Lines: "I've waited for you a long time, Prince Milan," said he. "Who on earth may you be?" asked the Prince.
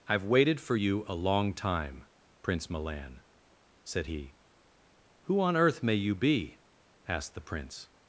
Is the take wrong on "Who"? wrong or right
right